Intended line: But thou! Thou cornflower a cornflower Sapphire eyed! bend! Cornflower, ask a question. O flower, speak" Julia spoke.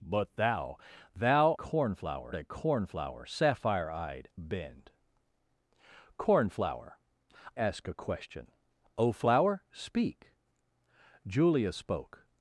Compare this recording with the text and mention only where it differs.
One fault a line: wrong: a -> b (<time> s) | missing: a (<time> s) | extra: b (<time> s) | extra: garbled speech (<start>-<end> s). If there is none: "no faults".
no faults